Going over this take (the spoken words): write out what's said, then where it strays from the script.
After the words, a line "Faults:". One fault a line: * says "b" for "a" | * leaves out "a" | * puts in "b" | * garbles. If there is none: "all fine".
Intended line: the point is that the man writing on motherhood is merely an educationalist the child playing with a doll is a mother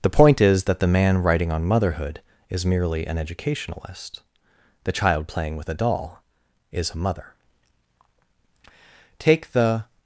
the point is that the man writing on motherhood is merely an educationalist the child playing with a doll is a mother take the
Faults:
* puts in "take the"